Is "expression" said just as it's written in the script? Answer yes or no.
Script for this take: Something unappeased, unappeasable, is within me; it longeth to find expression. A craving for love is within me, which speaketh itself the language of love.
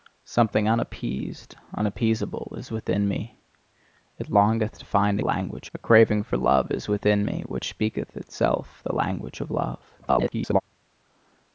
no